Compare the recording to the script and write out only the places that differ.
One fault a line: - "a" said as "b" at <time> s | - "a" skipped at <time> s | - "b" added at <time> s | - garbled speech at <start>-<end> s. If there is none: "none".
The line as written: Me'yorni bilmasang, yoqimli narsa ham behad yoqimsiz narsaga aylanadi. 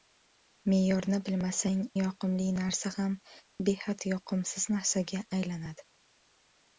none